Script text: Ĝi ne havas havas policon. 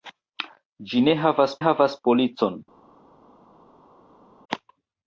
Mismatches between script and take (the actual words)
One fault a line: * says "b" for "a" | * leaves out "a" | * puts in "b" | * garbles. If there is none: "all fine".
all fine